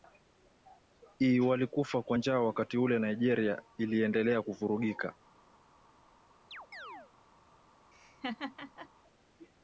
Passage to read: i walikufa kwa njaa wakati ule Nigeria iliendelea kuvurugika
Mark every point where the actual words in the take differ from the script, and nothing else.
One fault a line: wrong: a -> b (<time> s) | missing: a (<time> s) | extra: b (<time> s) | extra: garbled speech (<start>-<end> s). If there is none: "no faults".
no faults